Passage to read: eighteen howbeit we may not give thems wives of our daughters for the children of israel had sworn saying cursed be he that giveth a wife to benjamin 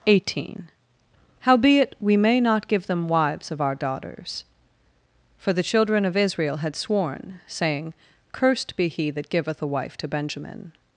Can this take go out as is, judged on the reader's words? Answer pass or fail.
fail